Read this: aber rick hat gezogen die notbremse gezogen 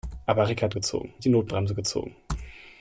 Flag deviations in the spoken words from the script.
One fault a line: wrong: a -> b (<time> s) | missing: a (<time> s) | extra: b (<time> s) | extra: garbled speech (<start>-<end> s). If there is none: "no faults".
no faults